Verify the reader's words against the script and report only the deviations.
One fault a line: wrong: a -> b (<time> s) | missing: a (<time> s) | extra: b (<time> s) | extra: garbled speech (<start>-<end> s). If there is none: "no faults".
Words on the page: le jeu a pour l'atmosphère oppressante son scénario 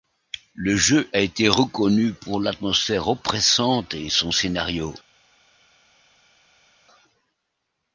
extra: été reconnu (1.2 s)
extra: et (3.9 s)